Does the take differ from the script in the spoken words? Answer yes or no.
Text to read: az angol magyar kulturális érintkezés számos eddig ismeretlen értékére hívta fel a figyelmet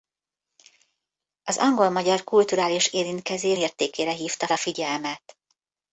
yes